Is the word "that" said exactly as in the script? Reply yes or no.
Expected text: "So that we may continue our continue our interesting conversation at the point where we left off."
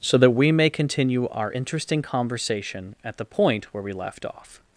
yes